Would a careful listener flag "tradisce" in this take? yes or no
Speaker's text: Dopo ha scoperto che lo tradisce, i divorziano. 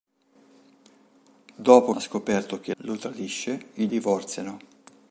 no